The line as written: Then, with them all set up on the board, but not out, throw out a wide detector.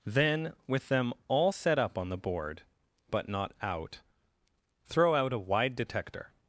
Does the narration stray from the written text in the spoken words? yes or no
no